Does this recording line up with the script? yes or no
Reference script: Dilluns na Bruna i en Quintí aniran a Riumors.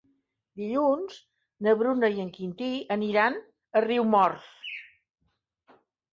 yes